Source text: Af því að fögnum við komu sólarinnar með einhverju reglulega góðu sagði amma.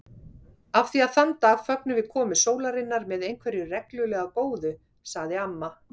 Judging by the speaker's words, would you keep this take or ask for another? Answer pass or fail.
fail